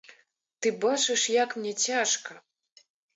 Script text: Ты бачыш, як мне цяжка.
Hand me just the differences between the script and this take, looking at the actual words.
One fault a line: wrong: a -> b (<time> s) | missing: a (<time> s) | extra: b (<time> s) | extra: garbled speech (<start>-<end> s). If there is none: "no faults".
no faults